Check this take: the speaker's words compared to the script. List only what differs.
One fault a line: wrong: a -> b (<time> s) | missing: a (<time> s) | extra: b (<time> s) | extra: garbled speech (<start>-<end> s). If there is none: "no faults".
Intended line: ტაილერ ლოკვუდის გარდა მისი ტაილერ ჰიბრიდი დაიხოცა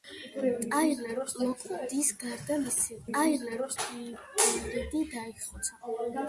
no faults